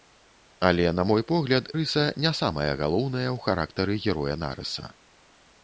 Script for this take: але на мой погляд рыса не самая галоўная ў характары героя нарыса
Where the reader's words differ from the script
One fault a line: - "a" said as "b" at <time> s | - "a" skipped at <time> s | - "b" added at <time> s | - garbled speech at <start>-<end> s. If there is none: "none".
none